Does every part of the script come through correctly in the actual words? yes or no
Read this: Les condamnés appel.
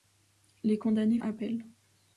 yes